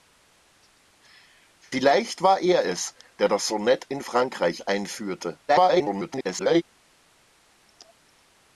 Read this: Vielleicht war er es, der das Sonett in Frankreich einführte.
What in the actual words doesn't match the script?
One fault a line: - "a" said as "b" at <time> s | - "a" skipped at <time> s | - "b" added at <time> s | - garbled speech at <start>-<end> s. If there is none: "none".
- garbled speech at 5.5-6.6 s